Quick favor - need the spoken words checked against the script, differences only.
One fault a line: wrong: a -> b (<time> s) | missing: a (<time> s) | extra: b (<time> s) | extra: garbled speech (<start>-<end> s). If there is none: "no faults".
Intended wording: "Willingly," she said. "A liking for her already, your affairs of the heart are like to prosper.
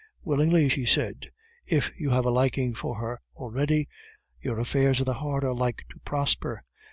extra: If you have (1.7 s)